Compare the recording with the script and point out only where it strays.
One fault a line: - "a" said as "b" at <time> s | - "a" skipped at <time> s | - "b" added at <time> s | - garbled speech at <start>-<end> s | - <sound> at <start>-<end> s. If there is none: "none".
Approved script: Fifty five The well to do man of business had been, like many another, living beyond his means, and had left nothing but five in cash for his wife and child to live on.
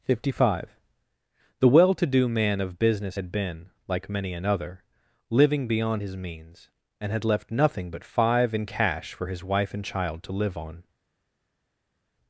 none